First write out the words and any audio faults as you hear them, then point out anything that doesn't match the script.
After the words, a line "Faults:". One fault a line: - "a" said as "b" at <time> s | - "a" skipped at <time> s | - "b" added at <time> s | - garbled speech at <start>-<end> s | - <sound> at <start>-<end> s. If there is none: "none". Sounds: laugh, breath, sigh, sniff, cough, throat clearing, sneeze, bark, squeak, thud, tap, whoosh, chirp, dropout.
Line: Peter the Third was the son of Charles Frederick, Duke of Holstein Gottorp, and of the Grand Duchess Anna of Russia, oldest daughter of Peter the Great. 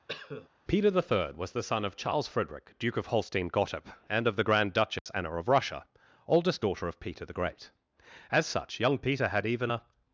Peter the Third was the son of Charles Frederick, Duke of Holstein Gottorp, and of the Grand Duchess Anna of Russia, oldest daughter of Peter the Great. As such, young Peter had even a
Faults:
- cough at 0.1-0.5 s
- dropout at 5.0-5.1 s
- "As such young Peter had even a" added at 8.3 s